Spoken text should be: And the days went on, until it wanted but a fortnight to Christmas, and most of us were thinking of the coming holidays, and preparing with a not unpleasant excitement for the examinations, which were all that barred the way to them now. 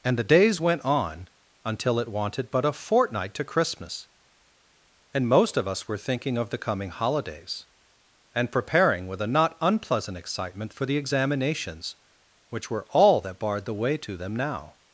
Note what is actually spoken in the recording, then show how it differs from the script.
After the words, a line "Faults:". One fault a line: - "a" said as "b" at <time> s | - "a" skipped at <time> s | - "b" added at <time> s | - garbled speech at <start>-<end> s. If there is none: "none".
And the days went on, until it wanted but a fortnight to Christmas, and most of us were thinking of the coming holidays, and preparing with a not unpleasant excitement for the examinations, which were all that barred the way to them now.
Faults:
none